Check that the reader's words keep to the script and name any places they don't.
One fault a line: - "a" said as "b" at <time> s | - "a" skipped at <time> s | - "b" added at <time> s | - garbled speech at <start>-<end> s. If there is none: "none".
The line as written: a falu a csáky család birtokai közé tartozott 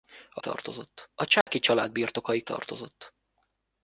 - "falu" said as "tartozott" at 0.4 s
- "közé" skipped at 2.4 s